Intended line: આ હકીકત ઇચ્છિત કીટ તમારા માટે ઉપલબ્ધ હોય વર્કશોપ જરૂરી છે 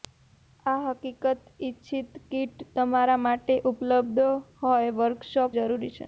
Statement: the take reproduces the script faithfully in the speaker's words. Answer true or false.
true